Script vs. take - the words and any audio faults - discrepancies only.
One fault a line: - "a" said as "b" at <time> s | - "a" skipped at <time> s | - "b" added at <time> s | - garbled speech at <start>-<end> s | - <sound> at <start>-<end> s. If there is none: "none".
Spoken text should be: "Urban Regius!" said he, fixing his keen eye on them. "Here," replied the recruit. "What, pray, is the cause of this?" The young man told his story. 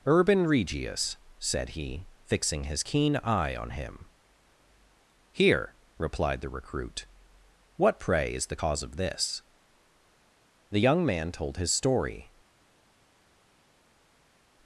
- "them" said as "him" at 3.7 s